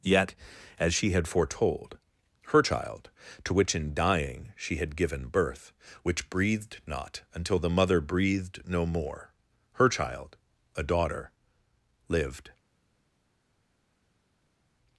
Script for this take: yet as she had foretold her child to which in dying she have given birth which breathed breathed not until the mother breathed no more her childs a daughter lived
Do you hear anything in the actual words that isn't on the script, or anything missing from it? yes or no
yes